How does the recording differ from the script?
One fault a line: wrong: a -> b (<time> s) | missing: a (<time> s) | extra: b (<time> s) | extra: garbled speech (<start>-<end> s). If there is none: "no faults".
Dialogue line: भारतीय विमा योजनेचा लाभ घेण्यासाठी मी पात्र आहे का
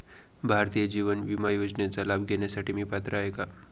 extra: जीवन (0.9 s)